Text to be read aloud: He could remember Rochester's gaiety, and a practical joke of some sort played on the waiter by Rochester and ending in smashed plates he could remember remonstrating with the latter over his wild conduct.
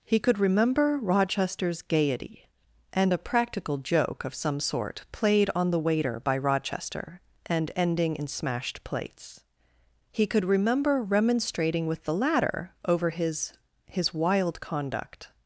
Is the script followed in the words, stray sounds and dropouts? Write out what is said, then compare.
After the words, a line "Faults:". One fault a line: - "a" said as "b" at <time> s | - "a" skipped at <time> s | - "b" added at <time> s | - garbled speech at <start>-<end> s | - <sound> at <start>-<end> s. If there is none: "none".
He could remember Rochester's gaiety, and a practical joke of some sort played on the waiter by Rochester and ending in smashed plates he could remember remonstrating with the latter over his his wild conduct.
Faults:
- "his" added at 13.8 s